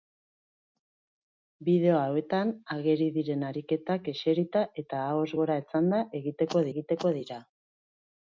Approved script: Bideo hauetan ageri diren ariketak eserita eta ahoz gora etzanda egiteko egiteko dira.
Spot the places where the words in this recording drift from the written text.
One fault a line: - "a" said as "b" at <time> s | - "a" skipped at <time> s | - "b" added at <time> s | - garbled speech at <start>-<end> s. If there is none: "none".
none